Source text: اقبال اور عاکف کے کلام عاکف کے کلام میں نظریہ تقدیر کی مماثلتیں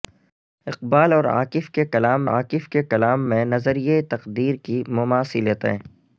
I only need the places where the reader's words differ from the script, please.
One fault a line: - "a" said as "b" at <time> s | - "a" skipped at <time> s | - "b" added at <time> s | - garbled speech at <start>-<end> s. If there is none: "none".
none